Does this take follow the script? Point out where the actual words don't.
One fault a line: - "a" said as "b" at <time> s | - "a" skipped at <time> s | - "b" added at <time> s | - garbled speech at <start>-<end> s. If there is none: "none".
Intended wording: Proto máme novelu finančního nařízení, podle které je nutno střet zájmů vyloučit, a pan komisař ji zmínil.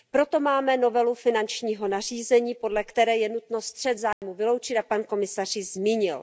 none